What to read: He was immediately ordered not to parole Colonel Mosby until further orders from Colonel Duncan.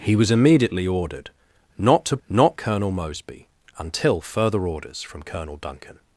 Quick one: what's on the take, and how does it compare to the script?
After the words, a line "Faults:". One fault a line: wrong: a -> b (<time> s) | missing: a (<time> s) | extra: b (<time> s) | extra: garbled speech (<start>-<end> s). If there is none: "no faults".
He was immediately ordered not to not Colonel Mosby until further orders from Colonel Duncan.
Faults:
wrong: parole -> not (2.3 s)